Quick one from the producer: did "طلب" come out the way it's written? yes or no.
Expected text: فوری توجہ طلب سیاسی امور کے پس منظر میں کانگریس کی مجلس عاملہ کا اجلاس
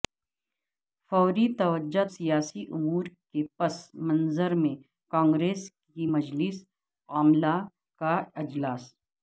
no